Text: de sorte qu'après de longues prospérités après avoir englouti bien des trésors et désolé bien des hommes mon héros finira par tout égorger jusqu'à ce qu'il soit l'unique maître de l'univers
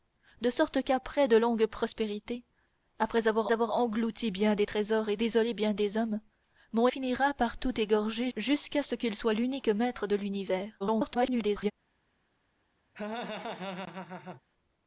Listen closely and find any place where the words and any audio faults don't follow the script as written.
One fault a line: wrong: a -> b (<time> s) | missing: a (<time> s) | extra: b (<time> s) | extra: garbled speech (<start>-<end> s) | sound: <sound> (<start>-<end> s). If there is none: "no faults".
extra: avoir (3.5 s)
missing: héros (6.9 s)
extra: garbled speech (10.8-11.7 s)
sound: laugh (12.9-14.4 s)